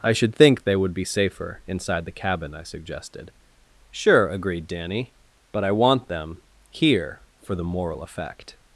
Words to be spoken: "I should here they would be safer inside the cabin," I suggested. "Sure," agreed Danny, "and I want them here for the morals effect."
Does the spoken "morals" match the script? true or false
false